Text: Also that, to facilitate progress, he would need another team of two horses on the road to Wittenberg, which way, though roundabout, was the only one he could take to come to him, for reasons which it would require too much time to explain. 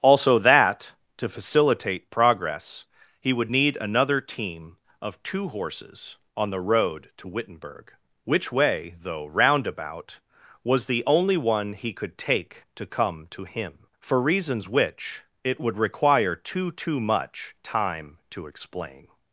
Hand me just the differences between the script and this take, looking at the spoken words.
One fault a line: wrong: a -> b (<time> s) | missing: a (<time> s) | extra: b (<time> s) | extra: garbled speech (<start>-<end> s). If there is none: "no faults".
extra: too (16.7 s)